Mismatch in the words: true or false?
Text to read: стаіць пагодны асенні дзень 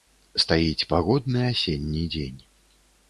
false